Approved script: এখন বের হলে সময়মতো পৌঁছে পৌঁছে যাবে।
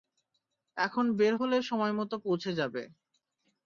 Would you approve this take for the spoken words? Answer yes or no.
no